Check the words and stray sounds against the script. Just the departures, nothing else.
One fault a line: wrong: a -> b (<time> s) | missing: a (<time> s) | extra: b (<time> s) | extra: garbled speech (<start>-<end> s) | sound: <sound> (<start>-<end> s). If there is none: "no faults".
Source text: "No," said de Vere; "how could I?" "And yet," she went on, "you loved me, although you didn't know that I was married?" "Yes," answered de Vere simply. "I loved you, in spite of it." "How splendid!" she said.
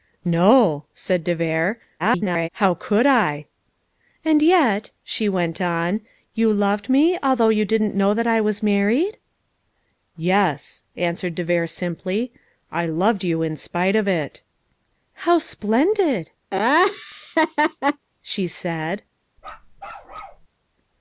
extra: garbled speech (2.0-2.5 s)
sound: laugh (16.5-18.1 s)
sound: bark (19.4-20.5 s)